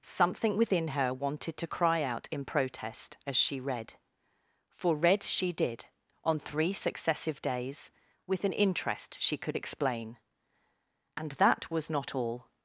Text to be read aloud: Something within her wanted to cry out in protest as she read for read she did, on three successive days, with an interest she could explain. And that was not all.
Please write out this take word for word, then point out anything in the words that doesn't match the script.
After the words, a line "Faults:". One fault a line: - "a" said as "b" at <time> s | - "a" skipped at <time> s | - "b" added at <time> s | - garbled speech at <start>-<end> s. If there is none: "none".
Something within her wanted to cry out in protest as she read for read she did, on three successive days, with an interest she could explain. And that was not all.
Faults:
none